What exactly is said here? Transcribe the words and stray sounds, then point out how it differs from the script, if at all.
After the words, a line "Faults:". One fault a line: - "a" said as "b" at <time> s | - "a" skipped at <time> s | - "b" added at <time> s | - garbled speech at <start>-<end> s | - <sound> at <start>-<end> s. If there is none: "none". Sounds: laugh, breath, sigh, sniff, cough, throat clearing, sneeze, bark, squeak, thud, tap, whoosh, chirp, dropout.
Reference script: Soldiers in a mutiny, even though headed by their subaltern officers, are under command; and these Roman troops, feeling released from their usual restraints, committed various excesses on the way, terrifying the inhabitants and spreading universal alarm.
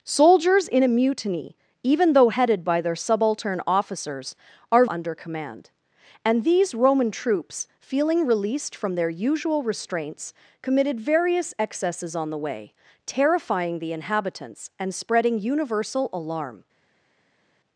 Soldiers in a mutiny, even though headed by their subaltern officers, are under command; and these Roman troops, feeling released from their usual restraints, committed various excesses on the way, terrifying the inhabitants and spreading universal alarm.
Faults:
none